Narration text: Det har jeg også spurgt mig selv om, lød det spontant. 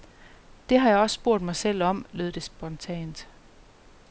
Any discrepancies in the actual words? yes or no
no